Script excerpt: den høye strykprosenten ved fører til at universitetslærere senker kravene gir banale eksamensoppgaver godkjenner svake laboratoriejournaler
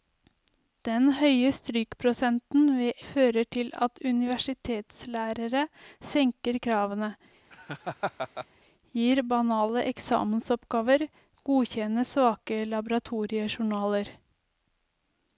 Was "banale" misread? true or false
false